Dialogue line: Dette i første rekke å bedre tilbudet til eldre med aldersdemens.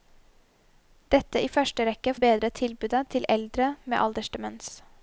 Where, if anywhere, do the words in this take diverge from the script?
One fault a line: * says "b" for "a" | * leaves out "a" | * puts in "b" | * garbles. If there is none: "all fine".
all fine